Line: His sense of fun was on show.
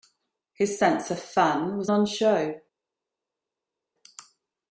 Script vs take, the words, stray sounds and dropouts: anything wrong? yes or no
no